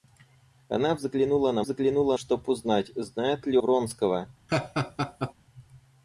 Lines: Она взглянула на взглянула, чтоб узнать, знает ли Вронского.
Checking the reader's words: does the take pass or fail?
pass